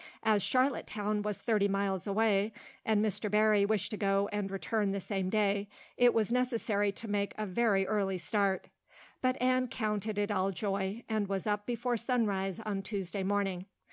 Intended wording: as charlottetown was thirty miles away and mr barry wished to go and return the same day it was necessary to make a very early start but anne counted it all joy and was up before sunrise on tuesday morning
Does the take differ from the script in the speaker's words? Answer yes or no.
no